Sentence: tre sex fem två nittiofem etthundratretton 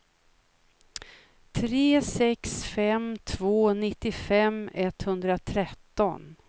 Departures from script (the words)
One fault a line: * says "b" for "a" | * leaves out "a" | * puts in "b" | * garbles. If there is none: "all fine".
all fine